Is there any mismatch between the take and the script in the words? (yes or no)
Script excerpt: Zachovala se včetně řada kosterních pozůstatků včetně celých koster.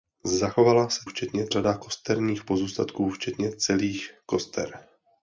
no